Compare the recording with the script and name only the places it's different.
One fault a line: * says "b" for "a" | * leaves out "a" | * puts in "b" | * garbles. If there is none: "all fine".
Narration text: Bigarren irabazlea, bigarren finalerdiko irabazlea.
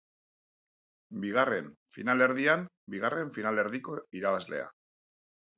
* says "finalerdian" for "irabazlea"